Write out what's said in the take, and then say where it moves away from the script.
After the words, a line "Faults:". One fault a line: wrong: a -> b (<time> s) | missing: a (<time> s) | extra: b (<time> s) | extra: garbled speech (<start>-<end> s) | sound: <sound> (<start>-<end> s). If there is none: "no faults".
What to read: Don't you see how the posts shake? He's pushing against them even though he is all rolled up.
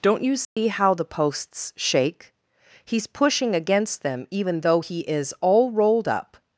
Don't you see how the posts shake? He's pushing against them even though he is all rolled up.
Faults:
sound: dropout (0.4-0.6 s)